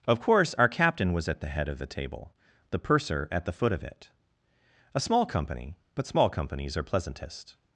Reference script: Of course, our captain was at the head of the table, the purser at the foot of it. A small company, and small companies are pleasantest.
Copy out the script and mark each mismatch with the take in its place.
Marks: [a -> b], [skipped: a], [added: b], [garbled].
Of course, our captain was at the head of the table, the purser at the foot of it. A small company, [and -> but] small companies are pleasantest.